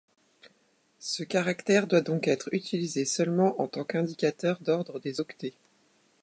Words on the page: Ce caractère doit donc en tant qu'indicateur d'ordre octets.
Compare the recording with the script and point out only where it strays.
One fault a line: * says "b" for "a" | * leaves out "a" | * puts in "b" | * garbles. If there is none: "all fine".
* puts in "être utilisé seulement"
* puts in "des"